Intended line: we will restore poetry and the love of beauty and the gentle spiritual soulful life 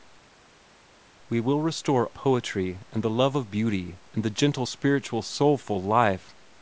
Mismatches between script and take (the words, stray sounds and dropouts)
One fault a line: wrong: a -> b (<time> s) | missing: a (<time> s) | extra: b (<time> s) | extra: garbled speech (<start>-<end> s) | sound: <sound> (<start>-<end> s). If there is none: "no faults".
no faults